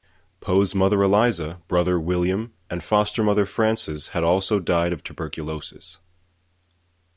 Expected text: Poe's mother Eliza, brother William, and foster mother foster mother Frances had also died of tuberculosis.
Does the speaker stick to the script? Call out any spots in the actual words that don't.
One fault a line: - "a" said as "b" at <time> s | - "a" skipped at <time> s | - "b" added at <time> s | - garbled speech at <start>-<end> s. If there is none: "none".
- "foster mother" skipped at 3.5 s